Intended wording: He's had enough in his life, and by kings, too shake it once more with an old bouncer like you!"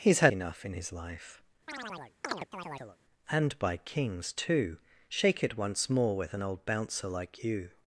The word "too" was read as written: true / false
true